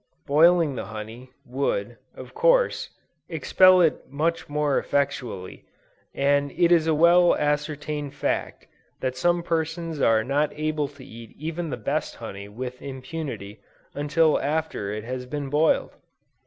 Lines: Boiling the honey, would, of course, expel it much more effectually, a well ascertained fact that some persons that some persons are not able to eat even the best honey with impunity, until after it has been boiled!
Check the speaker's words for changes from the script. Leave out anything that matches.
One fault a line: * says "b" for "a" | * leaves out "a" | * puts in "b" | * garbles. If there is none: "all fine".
* puts in "and it is"
* leaves out "that some persons"